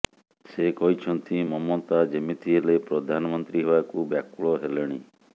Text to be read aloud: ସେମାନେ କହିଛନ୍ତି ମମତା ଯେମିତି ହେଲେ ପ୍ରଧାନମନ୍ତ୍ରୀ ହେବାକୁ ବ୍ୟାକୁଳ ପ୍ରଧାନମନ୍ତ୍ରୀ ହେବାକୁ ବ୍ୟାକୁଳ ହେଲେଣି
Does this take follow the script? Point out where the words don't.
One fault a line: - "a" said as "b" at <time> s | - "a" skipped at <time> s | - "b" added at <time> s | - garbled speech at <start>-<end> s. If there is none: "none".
- "ସେମାନେ" said as "ସେ" at 0.5 s
- "ପ୍ରଧାନମନ୍ତ୍ରୀ ହେବାକୁ ବ୍ୟାକୁଳ" skipped at 4.5 s